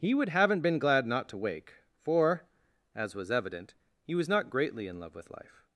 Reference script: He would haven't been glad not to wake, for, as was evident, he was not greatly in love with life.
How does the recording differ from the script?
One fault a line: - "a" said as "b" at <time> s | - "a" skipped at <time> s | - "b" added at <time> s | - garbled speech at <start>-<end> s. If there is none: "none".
none